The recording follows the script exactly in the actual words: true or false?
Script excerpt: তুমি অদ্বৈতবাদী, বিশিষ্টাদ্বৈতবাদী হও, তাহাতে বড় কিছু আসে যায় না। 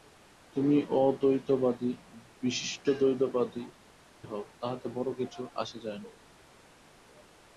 true